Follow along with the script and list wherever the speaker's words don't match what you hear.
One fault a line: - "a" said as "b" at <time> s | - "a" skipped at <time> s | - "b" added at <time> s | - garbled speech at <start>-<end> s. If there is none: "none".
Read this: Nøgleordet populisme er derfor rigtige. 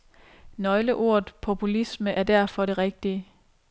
- "det" added at 2.6 s